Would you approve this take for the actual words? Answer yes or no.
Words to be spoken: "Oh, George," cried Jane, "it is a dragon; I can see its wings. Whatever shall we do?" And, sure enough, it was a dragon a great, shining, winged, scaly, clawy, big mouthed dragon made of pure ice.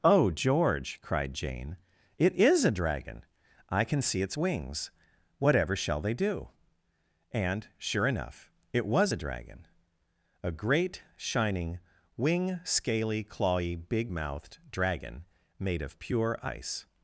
no